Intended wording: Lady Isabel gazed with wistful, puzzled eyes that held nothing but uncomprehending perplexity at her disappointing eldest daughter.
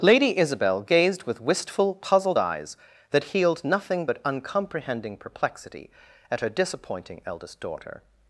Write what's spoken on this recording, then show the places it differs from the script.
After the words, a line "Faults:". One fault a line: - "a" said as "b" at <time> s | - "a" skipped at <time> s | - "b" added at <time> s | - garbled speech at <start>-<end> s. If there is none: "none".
Lady Isabel gazed with wistful, puzzled eyes that healed nothing but uncomprehending perplexity at her disappointing eldest daughter.
Faults:
- "held" said as "healed" at 3.2 s